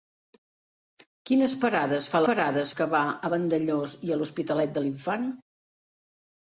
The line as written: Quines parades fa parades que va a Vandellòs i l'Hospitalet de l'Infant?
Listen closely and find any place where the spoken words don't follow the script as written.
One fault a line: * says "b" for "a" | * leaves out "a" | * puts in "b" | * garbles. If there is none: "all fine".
all fine